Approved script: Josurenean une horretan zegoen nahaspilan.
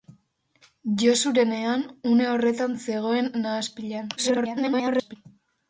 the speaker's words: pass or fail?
fail